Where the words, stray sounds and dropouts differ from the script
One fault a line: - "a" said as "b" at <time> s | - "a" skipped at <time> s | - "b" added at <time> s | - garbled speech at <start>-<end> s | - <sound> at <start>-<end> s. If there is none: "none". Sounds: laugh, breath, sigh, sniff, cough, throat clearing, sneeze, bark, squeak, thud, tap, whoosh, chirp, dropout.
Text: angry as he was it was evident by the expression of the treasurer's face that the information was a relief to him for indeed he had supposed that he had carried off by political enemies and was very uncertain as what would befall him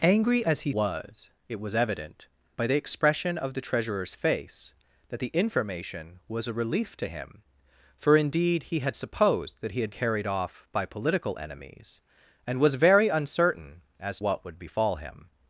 none